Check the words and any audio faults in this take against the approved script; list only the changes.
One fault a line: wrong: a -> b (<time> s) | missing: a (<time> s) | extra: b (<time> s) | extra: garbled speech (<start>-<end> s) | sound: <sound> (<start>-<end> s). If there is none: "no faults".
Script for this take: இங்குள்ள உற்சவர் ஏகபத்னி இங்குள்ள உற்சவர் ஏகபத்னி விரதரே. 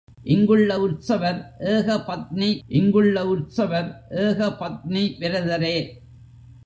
no faults